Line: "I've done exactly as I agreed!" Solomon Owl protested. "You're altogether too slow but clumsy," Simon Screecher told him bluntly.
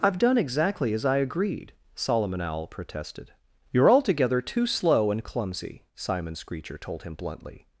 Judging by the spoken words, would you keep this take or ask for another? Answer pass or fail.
fail